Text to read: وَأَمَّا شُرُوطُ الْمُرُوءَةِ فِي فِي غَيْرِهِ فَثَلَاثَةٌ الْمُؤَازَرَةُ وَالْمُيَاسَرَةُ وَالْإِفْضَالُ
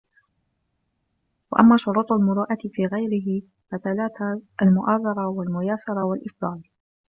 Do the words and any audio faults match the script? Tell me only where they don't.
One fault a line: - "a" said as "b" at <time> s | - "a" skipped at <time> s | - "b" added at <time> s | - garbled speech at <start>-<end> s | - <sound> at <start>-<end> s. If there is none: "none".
- "فِي" skipped at 2.8 s